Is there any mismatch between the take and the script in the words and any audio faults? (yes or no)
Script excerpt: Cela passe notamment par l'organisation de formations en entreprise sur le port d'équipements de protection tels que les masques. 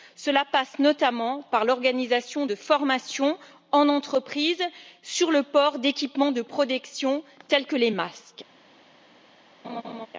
yes